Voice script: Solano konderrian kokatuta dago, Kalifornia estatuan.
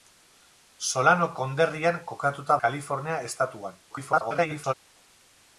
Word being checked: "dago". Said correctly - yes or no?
no